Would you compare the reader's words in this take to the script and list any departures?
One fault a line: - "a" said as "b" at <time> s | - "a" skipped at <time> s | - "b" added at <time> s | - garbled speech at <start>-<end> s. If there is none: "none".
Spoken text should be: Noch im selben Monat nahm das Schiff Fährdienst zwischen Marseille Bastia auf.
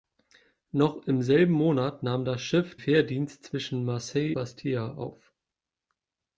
none